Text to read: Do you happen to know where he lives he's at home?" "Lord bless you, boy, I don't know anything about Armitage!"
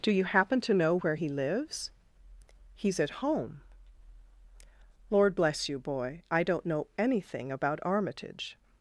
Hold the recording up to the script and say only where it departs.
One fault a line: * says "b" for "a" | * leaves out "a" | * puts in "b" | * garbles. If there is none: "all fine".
all fine